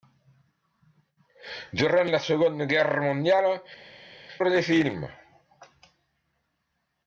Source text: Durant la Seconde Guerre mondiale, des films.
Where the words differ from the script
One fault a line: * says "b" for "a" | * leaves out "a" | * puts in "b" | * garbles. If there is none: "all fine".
all fine